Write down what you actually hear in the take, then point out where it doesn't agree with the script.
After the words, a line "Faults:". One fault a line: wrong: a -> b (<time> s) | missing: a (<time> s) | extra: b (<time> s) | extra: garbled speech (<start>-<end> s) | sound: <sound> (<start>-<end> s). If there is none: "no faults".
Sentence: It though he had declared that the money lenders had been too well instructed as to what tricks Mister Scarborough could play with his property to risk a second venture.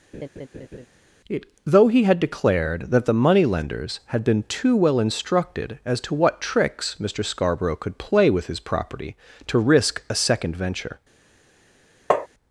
It though he had declared that the money lenders had been too well instructed as to what tricks Mister Scarborough could play with his property to risk a second venture.
Faults:
sound: laugh (0.1-0.9 s)
sound: tap (12.1-12.3 s)